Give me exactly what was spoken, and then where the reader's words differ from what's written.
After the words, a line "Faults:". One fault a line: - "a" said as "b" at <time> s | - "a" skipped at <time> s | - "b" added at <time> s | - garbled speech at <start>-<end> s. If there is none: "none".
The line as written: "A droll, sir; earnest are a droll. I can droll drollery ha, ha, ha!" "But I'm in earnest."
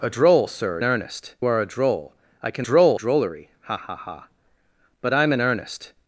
"A droll, sir; earnest are a droll. I can droll drollery ha, ha, ha!" "But I'm in earnest."
Faults:
none